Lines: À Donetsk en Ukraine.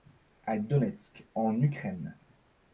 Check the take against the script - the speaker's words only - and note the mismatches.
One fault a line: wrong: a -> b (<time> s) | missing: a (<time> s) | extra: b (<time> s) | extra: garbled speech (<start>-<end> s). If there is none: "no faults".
no faults